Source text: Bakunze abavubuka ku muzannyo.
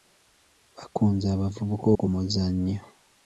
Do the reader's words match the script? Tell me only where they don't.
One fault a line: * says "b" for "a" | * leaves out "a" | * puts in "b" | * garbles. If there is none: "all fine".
all fine